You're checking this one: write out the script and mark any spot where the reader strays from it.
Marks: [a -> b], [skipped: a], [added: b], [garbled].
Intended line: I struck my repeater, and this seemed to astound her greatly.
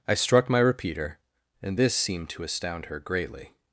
I struck my repeater, and this seemed to astound her greatly.